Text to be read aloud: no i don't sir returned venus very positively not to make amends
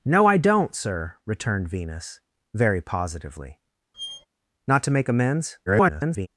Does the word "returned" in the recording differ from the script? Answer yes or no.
no